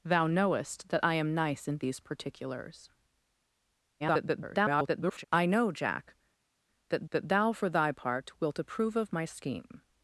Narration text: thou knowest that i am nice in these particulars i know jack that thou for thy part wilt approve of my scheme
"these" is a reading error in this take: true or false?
false